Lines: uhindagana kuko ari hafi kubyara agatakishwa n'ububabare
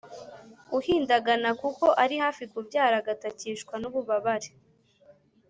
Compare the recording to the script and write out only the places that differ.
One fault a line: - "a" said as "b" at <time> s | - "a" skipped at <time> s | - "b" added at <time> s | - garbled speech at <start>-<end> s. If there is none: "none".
none